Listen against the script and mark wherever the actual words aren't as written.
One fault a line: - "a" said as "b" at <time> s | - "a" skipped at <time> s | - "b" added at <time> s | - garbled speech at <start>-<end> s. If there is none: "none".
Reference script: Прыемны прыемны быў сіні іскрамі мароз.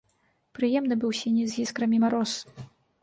- "прыемны" skipped at 1.0 s
- "з" added at 1.5 s